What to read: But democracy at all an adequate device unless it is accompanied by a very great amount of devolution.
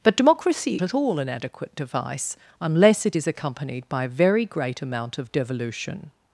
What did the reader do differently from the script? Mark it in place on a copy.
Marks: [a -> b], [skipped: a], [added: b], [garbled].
But democracy at all an adequate device unless it is accompanied by a very great amount of devolution.